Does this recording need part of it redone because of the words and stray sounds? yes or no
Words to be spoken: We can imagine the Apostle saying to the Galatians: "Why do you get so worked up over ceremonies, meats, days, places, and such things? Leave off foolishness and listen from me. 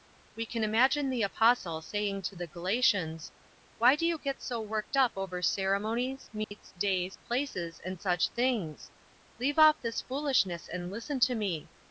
yes